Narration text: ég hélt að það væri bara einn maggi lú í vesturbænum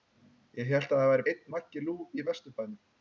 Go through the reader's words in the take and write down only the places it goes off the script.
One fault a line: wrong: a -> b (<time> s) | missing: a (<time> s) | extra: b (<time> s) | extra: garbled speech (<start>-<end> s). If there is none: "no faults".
missing: bara (1.3 s)